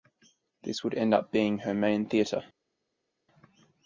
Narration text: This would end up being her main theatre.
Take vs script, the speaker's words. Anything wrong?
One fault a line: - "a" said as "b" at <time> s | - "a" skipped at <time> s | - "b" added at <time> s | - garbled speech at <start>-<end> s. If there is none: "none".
none